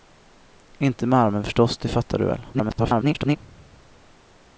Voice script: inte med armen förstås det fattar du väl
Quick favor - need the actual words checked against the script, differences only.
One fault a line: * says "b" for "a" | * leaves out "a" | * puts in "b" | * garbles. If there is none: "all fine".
* garbles